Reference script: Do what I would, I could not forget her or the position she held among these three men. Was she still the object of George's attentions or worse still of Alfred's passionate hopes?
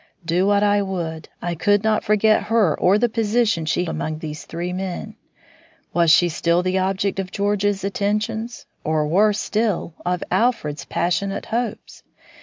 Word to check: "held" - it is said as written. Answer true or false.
false